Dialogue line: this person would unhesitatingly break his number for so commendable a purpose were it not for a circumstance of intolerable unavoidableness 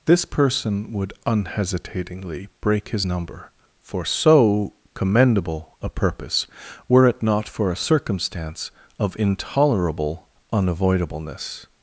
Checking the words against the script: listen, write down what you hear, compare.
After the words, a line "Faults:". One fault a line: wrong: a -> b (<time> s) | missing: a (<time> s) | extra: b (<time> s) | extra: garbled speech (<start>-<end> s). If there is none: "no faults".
this person would unhesitatingly break his number for so commendable a purpose were it not for a circumstance of intolerable unavoidableness
Faults:
no faults